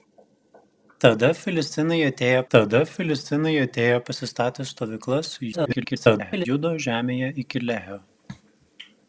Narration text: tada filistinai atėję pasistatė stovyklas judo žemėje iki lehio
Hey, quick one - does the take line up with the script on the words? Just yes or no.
no